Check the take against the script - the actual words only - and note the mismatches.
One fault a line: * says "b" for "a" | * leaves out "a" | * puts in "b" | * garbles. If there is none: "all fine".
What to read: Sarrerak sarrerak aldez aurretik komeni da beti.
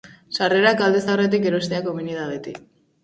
* leaves out "sarrerak"
* puts in "erostea"